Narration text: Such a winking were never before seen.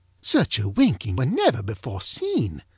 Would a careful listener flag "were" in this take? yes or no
no